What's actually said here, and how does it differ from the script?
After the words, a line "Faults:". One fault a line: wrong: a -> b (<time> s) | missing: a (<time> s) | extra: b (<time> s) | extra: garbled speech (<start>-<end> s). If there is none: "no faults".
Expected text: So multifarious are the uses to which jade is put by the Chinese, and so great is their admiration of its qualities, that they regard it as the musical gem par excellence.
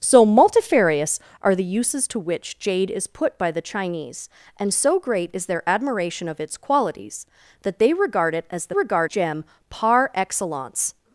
So multifarious are the uses to which jade is put by the Chinese, and so great is their admiration of its qualities, that they regard it as the regard gem par excellence.
Faults:
wrong: musical -> regard (8.7 s)